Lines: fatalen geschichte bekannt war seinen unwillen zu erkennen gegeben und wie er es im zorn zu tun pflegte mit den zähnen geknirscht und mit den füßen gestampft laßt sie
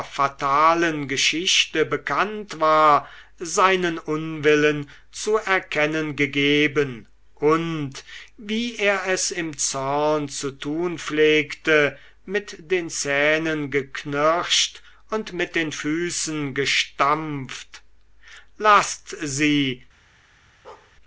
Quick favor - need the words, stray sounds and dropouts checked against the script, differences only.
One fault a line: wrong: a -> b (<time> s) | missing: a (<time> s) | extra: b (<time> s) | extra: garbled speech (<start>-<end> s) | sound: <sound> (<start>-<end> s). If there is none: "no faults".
sound: bark (20.6-20.9 s)